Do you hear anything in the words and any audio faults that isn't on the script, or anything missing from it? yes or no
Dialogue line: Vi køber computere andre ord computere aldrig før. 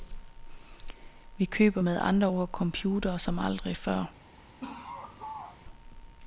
yes